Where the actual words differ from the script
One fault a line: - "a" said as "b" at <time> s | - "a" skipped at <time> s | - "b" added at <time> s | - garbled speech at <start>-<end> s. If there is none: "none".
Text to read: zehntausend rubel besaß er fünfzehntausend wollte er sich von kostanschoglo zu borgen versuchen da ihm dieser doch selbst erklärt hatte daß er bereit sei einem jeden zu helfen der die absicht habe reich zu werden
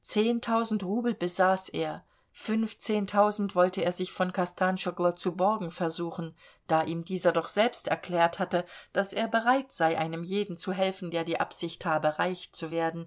none